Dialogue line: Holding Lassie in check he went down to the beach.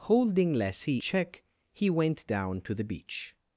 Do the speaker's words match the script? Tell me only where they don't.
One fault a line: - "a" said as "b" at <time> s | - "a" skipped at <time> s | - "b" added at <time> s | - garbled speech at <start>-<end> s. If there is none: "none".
- "in" skipped at 1.0 s